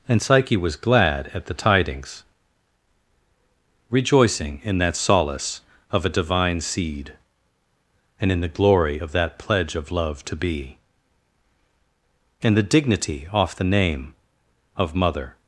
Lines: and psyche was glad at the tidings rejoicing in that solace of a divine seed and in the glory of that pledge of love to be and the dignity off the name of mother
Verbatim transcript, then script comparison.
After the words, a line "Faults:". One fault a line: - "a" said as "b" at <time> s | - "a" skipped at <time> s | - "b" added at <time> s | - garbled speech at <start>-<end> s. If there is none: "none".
and psyche was glad at the tidings rejoicing in that solace of a divine seed and in the glory of that pledge of love to be and the dignity off the name of mother
Faults:
none